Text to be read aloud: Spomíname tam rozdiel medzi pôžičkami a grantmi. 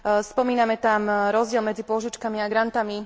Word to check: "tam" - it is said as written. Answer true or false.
true